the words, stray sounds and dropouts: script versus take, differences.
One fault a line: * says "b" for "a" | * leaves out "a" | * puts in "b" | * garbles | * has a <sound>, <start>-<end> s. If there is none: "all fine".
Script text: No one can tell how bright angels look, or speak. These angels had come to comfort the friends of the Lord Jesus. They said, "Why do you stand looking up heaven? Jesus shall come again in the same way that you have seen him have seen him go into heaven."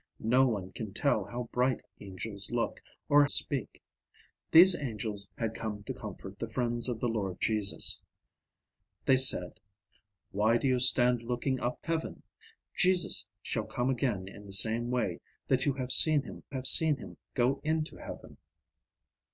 all fine